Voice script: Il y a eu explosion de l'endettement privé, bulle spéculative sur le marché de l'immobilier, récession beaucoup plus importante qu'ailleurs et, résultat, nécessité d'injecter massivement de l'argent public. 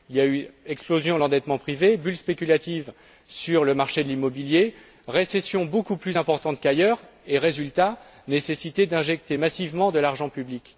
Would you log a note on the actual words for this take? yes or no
no